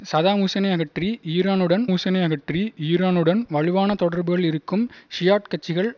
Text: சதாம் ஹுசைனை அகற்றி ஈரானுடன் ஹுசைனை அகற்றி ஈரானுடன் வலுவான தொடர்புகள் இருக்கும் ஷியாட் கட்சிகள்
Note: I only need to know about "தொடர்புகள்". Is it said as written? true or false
true